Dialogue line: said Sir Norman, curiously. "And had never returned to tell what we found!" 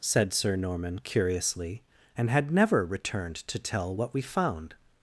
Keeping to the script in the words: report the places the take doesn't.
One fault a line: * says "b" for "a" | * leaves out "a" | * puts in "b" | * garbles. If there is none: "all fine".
all fine